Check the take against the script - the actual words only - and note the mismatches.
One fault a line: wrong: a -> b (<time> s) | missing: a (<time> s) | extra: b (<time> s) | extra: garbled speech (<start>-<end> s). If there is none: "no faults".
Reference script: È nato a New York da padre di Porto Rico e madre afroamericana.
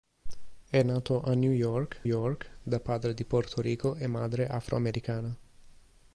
extra: York (2.0 s)